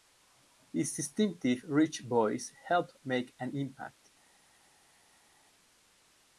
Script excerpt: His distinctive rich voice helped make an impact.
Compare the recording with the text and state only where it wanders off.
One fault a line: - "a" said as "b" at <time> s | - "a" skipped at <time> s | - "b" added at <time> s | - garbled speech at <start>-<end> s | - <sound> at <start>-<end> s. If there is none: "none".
none